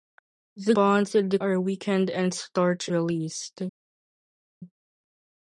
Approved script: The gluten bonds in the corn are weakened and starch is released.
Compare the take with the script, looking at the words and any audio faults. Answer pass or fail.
fail